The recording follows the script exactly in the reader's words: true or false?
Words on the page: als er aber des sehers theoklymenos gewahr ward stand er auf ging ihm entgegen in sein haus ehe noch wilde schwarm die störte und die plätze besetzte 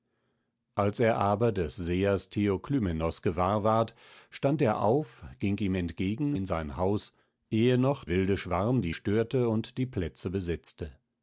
true